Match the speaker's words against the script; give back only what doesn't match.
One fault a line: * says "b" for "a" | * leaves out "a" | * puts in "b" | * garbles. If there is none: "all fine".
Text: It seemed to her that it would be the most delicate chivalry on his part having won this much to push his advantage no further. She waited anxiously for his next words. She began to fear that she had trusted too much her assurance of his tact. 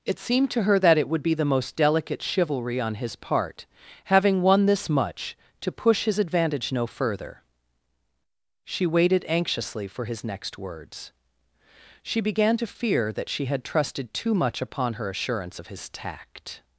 * puts in "upon"